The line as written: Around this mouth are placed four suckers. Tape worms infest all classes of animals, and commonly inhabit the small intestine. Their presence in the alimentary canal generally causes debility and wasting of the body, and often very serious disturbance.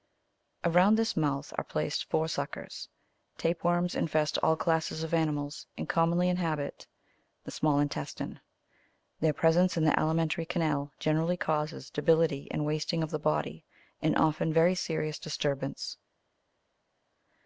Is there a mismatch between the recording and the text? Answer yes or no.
no